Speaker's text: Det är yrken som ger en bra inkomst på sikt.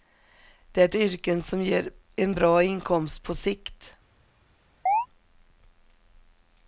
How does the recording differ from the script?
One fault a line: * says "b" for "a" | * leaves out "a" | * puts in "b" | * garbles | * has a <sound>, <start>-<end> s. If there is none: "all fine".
* leaves out "är"
* has a chirp, 4.9-5.1 s